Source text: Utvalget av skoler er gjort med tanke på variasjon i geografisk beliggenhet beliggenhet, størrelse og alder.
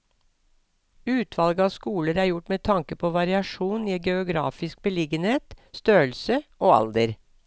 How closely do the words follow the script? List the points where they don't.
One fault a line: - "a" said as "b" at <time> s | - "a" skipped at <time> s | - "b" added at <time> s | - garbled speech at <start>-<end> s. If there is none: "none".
- "beliggenhet" skipped at 5.5 s